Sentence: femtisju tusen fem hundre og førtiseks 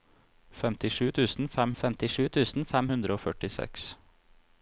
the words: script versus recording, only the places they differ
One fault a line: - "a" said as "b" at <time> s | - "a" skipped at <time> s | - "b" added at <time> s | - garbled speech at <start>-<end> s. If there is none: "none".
- "femtisju tusen fem" added at 1.8 s